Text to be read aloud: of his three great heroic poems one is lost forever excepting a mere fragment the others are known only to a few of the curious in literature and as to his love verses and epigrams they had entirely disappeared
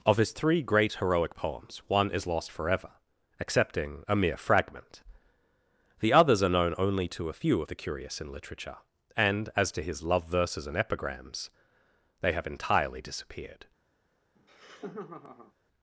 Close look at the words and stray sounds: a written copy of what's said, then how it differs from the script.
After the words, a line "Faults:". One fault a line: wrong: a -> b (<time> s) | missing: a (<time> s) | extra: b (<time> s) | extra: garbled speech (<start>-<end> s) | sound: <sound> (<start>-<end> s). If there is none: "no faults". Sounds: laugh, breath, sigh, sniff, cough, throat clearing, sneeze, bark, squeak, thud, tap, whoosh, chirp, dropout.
of his three great heroic poems one is lost forever excepting a mere fragment the others are known only to a few of the curious in literature and as to his love verses and epigrams they have entirely disappeared
Faults:
wrong: had -> have (12.3 s)
sound: laugh (14.4-15.5 s)